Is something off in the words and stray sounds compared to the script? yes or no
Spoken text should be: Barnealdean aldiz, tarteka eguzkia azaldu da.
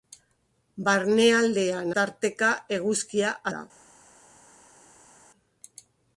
yes